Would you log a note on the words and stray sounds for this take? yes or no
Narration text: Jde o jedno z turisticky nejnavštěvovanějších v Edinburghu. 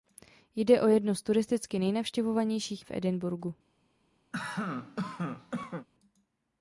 yes